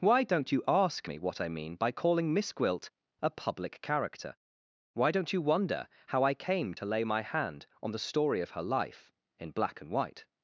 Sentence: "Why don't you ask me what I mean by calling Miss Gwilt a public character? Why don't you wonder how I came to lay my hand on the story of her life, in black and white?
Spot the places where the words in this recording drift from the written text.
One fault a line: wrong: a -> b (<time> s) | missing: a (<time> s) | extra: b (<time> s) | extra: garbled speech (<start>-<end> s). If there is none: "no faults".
no faults